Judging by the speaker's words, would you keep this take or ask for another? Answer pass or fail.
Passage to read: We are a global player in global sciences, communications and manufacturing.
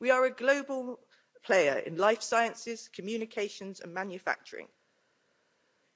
fail